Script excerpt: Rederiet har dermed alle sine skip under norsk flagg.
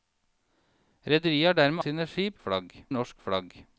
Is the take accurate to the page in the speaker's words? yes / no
no